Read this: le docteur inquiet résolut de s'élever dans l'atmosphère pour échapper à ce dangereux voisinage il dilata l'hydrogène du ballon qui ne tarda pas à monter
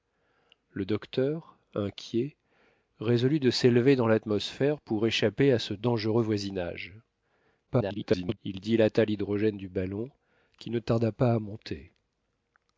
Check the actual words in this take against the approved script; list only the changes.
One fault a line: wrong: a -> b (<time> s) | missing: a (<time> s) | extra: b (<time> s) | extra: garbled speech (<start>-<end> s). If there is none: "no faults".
extra: garbled speech (7.7-8.4 s)